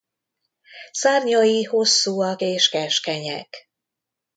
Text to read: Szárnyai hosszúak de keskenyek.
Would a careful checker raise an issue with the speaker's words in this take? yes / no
yes